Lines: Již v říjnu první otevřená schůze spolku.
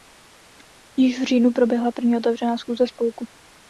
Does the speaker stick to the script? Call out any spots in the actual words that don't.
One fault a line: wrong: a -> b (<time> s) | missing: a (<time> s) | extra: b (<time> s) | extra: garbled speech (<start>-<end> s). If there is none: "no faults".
extra: proběhla (1.5 s)